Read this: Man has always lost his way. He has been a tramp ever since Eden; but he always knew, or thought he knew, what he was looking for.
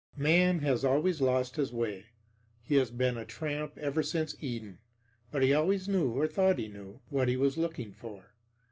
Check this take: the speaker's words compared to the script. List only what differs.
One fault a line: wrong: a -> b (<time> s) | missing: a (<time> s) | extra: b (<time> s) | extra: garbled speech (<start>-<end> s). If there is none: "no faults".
no faults